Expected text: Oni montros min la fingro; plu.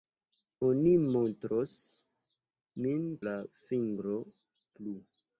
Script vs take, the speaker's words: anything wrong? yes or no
no